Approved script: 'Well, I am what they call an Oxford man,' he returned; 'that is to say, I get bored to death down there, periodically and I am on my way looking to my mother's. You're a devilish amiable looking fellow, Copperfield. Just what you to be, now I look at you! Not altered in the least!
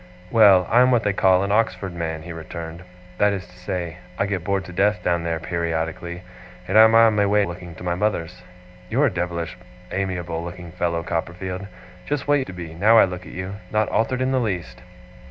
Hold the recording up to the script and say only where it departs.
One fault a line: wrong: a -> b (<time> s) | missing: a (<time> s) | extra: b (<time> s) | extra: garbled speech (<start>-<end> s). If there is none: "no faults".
no faults